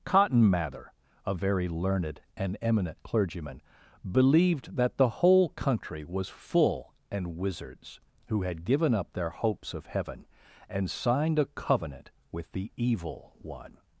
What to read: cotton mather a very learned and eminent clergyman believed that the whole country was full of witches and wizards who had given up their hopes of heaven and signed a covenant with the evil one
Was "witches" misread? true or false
true